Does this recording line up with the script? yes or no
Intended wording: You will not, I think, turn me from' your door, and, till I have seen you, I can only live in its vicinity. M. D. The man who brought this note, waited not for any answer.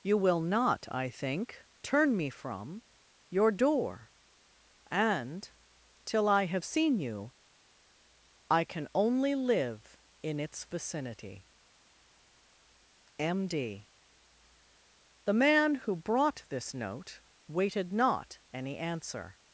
no